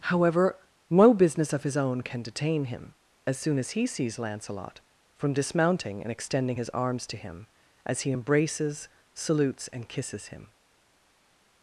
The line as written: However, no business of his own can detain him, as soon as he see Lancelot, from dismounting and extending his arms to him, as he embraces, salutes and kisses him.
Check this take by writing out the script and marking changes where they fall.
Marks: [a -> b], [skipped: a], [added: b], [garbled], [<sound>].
However, no business of his own can detain him, as soon as he [see -> sees] Lancelot, from dismounting and extending his arms to him, as he embraces, salutes and kisses him.